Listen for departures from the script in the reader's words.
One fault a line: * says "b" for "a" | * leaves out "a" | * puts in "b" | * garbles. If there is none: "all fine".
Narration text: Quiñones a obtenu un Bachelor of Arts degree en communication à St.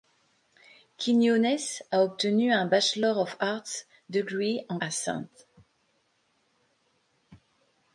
* leaves out "communication"